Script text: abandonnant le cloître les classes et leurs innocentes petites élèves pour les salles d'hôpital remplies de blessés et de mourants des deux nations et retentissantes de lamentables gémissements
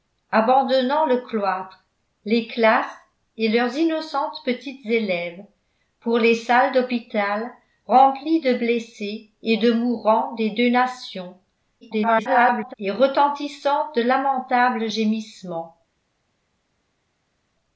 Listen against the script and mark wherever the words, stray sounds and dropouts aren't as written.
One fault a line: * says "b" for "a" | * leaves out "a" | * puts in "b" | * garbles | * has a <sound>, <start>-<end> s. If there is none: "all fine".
* garbles